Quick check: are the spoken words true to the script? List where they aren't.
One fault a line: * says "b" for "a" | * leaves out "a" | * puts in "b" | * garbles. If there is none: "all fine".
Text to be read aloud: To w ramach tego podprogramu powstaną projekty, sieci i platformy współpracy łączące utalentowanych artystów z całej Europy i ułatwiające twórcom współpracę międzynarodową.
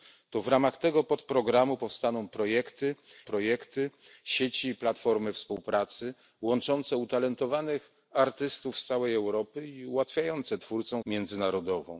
* puts in "projekty"
* leaves out "współpracę"